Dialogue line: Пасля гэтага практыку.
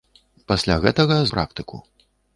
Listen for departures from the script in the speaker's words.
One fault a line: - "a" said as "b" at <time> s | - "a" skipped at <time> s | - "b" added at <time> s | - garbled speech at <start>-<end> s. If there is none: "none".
none